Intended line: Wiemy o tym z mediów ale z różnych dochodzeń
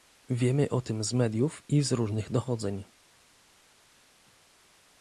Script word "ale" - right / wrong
wrong